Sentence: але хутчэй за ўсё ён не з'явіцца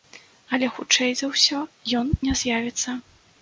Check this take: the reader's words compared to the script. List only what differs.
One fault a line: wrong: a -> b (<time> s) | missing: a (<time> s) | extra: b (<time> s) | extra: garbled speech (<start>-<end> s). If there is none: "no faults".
no faults